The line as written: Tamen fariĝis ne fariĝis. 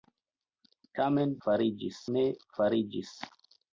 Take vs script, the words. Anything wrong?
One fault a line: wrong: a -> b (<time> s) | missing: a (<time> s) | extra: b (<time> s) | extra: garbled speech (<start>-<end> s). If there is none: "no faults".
no faults